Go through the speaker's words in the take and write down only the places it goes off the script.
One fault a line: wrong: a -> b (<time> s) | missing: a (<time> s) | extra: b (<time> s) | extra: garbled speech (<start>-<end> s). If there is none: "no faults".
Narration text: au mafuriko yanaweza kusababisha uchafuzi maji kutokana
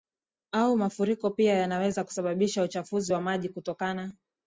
extra: pia (1.3 s)
extra: wa (3.1 s)